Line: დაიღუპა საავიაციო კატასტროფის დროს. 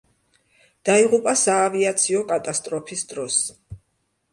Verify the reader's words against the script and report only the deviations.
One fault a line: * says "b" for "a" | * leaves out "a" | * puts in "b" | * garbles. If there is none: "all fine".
all fine